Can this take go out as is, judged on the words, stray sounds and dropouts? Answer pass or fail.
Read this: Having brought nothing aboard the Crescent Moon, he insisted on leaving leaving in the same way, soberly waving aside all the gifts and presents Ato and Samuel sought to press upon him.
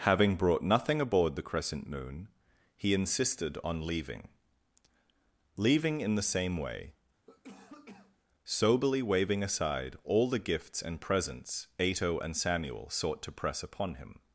fail